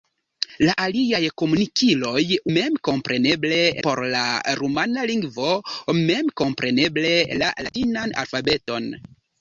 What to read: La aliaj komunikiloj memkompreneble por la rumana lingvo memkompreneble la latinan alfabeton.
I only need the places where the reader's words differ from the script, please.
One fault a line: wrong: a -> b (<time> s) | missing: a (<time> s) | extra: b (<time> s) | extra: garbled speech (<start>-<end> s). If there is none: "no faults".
no faults